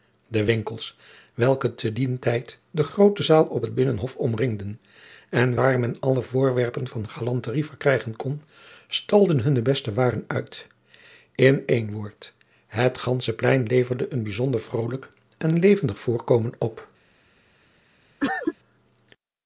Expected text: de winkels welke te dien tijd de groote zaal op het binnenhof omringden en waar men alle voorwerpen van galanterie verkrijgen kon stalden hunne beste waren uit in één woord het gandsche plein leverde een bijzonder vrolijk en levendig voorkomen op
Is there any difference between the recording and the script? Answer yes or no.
no